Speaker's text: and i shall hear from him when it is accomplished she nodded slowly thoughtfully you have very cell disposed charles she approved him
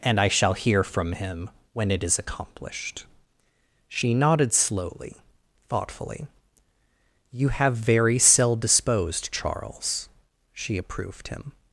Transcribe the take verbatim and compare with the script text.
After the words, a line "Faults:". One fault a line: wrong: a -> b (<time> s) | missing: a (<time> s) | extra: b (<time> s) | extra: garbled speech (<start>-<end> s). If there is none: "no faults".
and i shall hear from him when it is accomplished she nodded slowly thoughtfully you have very cell disposed charles she approved him
Faults:
no faults